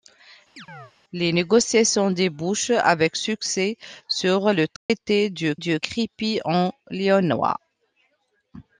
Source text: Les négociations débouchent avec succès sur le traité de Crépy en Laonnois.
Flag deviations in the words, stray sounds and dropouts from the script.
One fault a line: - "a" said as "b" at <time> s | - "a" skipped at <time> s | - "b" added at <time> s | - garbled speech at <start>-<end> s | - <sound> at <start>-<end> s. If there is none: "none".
- chirp at 0.6-0.9 s
- dropout at 4.8-4.9 s
- "de" added at 5.5 s